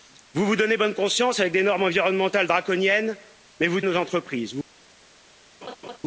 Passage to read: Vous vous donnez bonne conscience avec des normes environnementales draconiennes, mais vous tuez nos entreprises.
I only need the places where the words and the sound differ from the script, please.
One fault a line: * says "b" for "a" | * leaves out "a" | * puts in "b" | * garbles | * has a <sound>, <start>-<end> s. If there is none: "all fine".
* leaves out "tuez"
* has a laugh, 5.6-6.0 s